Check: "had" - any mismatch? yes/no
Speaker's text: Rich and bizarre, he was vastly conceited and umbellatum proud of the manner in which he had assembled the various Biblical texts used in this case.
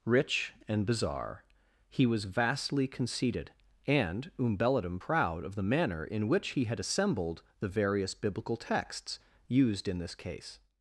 no